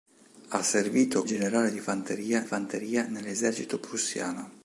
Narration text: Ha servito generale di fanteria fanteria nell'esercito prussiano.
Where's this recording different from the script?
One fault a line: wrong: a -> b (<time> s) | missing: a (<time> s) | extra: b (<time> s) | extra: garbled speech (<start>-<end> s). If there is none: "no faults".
no faults